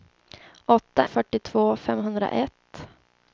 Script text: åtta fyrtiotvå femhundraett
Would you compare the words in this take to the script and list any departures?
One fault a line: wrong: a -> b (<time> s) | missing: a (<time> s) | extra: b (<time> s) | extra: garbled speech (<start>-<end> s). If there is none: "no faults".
no faults